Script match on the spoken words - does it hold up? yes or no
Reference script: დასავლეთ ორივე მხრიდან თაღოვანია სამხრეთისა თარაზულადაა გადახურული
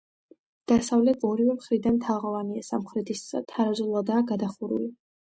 yes